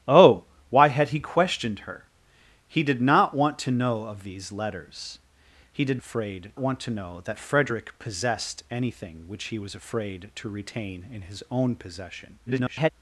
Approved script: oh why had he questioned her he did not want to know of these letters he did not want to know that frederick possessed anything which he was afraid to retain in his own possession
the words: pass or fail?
fail